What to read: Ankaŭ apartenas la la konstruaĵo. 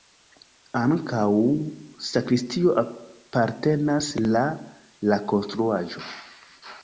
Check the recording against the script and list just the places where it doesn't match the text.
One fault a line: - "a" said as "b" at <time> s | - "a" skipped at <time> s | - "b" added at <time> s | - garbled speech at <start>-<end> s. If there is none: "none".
- "sakristio" added at 2.0 s